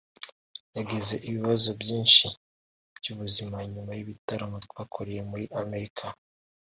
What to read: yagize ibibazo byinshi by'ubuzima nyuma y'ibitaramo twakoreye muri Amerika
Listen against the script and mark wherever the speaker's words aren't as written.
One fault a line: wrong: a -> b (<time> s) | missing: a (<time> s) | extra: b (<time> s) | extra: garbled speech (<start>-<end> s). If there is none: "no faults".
no faults